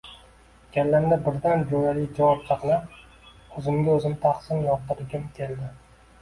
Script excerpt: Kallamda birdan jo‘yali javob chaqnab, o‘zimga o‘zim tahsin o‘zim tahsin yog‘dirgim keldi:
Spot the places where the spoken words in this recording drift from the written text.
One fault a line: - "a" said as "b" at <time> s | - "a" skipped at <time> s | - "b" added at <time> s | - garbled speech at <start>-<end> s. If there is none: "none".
- "o‘zim tahsin" skipped at 4.7 s